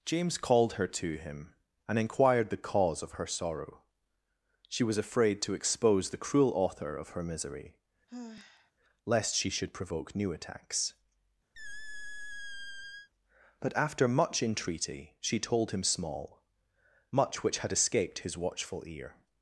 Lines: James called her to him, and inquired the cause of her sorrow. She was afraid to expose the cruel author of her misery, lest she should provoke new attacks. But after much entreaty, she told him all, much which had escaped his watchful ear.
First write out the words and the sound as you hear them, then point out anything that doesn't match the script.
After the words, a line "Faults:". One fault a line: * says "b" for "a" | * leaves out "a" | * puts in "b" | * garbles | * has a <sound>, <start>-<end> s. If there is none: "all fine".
James called her to him, and inquired the cause of her sorrow. She was afraid to expose the cruel author of her misery, lest she should provoke new attacks. But after much entreaty, she told him small, much which had escaped his watchful ear.
Faults:
* has a sigh, 8.1-8.7 s
* has a squeak, 11.5-13.1 s
* says "small" for "all"